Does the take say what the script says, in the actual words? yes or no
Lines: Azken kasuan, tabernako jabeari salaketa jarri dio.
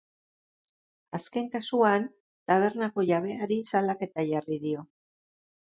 yes